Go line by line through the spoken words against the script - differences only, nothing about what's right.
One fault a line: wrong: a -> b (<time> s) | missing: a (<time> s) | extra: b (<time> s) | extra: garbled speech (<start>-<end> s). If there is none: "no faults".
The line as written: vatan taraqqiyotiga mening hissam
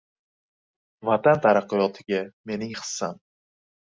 no faults